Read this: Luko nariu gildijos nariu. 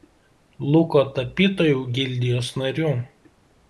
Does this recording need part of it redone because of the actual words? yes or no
yes